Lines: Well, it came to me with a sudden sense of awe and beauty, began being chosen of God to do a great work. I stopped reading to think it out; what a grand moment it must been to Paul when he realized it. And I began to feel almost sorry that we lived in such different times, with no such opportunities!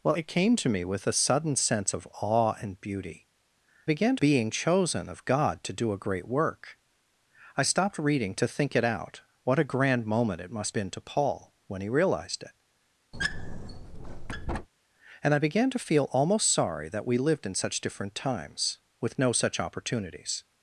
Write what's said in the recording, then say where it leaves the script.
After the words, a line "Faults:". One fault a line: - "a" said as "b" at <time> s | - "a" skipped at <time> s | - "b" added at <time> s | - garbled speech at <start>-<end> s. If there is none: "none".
Well, it came to me with a sudden sense of awe and beauty, began being chosen of God to do a great work. I stopped reading to think it out; what a grand moment it must been to Paul when he realized it. And I began to feel almost sorry that we lived in such different times, with no such opportunities!
Faults:
none